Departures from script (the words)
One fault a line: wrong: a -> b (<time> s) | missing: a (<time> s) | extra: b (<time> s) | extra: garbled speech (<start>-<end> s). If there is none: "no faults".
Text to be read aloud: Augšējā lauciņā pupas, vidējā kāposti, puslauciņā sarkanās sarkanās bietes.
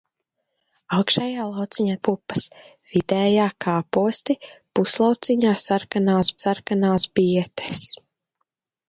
no faults